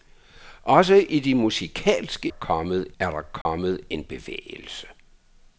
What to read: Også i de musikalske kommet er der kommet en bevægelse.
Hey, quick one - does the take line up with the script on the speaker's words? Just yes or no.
yes